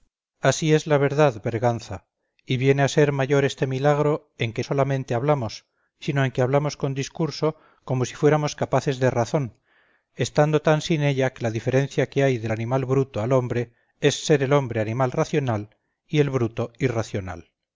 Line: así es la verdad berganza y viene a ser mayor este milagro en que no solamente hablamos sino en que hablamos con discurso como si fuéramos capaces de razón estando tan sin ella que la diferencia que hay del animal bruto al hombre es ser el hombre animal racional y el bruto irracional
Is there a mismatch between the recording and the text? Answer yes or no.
yes